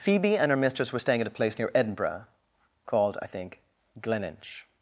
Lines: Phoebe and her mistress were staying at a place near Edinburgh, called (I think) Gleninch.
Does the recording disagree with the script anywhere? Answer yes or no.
no